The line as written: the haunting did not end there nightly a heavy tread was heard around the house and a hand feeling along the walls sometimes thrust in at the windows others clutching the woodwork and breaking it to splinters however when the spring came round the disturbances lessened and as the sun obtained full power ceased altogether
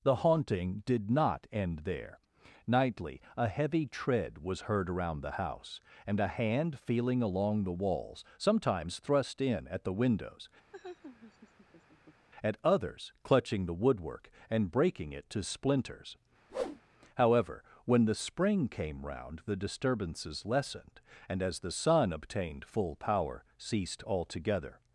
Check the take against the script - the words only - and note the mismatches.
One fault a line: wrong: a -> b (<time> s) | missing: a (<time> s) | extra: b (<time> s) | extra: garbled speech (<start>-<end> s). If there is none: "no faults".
extra: at (12.4 s)